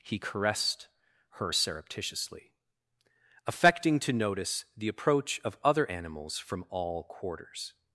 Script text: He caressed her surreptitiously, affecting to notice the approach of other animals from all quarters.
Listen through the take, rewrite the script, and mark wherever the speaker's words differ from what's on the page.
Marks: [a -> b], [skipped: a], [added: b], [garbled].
He caressed her surreptitiously, affecting to notice the approach of other animals from all quarters.